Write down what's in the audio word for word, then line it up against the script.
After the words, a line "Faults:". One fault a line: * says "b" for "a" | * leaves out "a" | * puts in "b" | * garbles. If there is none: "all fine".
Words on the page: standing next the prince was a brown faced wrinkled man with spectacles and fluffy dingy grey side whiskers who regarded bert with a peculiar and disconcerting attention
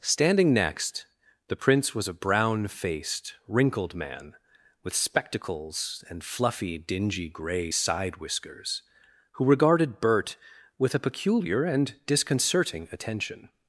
standing next the prince was a brown faced wrinkled man with spectacles and fluffy dingy grey side whiskers who regarded bert with a peculiar and disconcerting attention
Faults:
all fine